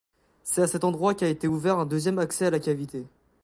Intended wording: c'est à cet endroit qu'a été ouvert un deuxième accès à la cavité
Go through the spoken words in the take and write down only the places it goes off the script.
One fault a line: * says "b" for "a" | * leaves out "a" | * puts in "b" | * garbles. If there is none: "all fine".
all fine